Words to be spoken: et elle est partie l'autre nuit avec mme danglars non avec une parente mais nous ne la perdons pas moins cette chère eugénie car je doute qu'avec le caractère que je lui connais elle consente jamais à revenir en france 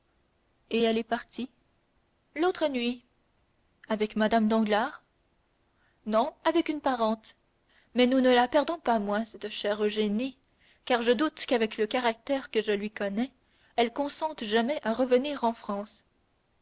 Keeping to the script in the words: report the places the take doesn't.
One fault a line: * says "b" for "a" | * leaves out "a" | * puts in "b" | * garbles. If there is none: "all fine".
all fine